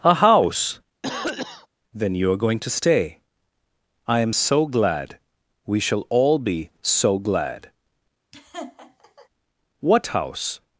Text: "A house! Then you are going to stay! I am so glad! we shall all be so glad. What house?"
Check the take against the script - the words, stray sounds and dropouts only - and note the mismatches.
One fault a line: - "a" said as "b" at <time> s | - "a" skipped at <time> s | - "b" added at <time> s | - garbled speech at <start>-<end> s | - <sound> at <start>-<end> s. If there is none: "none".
- cough at 1.0-1.7 s
- laugh at 8.3-9.3 s